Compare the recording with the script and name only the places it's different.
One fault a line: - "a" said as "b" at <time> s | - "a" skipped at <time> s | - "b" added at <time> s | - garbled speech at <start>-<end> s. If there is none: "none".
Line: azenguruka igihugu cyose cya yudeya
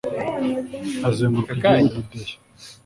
- "cyose cya" skipped at 1.9 s